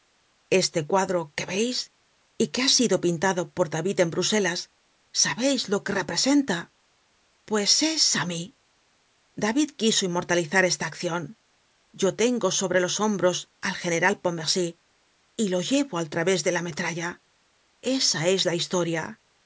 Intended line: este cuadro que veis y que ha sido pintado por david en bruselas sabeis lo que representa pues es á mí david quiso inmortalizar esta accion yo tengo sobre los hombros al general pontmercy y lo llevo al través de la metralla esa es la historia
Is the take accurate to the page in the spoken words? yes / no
yes